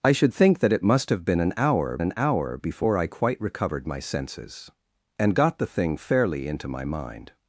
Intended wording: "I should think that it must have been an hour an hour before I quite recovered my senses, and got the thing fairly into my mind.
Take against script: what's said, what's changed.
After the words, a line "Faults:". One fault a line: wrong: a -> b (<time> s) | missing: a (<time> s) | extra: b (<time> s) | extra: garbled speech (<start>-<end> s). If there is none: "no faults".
"I should think that it must have been an hour an hour before I quite recovered my senses, and got the thing fairly into my mind.
Faults:
no faults